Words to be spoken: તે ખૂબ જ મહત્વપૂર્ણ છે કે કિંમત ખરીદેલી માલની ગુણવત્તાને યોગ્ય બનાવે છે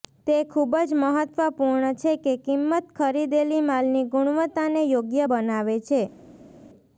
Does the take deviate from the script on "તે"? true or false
false